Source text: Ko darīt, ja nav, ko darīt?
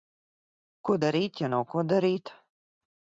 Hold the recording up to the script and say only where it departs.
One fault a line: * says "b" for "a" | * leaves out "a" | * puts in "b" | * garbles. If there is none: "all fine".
all fine